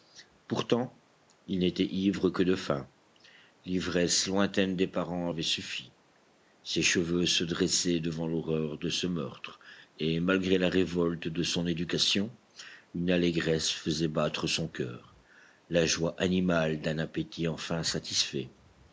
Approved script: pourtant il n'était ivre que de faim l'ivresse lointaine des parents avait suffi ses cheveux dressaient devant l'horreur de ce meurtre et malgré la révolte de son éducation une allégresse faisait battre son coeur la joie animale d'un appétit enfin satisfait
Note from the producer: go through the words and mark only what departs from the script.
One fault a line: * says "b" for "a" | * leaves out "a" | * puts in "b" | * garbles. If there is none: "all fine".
* puts in "se"